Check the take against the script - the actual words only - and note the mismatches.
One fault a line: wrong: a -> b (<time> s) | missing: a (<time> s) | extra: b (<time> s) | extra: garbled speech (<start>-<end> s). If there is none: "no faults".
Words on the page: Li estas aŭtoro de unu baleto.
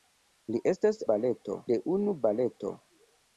wrong: aŭtoro -> baleto (1.1 s)